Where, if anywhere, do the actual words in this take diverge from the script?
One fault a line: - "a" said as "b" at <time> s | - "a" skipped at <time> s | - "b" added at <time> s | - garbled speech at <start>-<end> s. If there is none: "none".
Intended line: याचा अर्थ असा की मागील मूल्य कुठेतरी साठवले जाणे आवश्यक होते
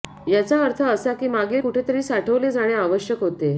- "मूल्य" skipped at 1.6 s